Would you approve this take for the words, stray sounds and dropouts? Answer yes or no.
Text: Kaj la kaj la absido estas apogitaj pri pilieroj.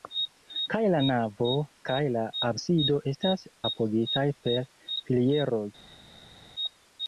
no